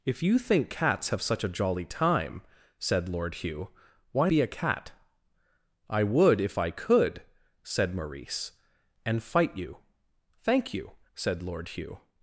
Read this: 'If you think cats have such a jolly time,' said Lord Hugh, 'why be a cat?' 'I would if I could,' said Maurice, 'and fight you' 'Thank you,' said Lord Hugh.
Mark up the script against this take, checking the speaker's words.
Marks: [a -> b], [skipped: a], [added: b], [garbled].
'If you think cats have such a jolly time,' said Lord Hugh, 'why be a cat?' 'I would if I could,' said Maurice, 'and fight you' 'Thank you,' said Lord Hugh.